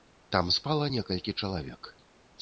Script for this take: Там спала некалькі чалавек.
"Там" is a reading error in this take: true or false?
false